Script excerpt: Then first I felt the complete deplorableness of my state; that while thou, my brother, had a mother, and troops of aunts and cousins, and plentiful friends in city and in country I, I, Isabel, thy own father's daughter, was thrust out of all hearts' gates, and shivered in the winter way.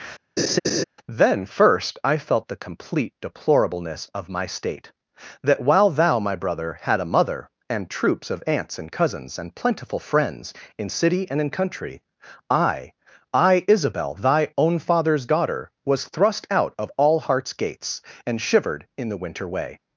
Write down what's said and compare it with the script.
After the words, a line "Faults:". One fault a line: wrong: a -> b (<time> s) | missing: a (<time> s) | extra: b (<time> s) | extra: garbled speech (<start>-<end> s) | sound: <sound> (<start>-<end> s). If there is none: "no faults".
Then first I felt the complete deplorableness of my state; that while thou, my brother, had a mother, and troops of aunts and cousins, and plentiful friends in city and in country I, I, Isabel, thy own father's daughter, was thrust out of all hearts' gates, and shivered in the winter way.
Faults:
sound: laugh (0.4-0.8 s)